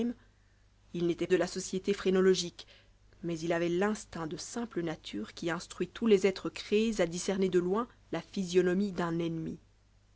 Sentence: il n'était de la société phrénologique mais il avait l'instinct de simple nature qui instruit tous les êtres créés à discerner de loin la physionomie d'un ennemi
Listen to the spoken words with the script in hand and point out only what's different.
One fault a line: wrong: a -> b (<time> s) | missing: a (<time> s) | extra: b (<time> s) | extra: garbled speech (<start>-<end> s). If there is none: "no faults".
no faults